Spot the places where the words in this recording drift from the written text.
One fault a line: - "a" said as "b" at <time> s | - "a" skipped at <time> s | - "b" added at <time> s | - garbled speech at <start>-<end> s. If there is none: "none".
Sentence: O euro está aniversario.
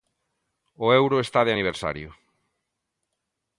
- "de" added at 1.4 s